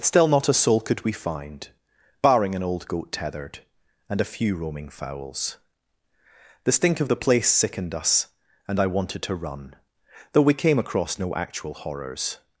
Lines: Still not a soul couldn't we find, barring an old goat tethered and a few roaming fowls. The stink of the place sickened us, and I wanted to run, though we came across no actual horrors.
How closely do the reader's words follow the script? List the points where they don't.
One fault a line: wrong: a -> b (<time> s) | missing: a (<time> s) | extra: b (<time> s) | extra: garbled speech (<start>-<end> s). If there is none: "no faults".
wrong: couldn't -> could (0.8 s)